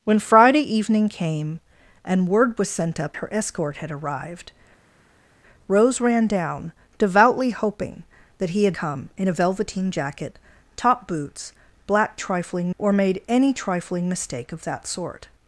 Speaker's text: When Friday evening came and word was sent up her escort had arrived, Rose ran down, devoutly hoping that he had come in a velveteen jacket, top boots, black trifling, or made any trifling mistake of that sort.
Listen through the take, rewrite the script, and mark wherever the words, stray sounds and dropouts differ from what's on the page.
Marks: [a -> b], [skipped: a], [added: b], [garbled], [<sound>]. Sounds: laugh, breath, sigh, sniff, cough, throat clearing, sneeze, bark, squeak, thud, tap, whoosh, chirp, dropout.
When Friday evening came and word was sent up her escort had arrived, Rose ran down, devoutly hoping that he had come in a velveteen jacket, top boots, black trifling, or made any trifling mistake of that sort.